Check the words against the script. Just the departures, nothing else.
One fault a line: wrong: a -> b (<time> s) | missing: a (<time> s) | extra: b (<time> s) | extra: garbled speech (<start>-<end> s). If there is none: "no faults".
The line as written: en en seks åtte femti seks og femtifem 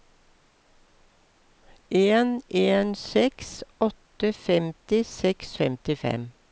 no faults